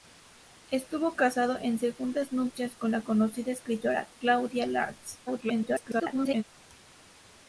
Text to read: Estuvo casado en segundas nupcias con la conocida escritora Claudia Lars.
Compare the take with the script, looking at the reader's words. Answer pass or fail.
fail